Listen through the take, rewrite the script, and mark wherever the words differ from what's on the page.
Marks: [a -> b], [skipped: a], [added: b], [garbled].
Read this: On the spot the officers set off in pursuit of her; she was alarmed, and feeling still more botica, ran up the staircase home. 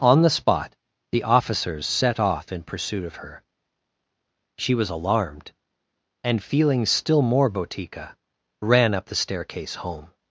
On the spot the officers set off in pursuit of her; she was alarmed, and feeling still more botica, ran up the staircase home.